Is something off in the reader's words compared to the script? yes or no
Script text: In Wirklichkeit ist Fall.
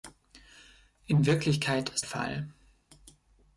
no